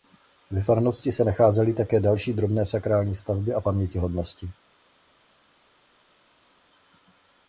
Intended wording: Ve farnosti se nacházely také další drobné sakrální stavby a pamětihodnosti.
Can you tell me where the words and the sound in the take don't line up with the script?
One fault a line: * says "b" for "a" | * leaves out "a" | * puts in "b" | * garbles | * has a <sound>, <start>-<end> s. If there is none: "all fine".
all fine